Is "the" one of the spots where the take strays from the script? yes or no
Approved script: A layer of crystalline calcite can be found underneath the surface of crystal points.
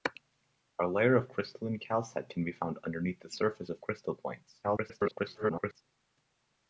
no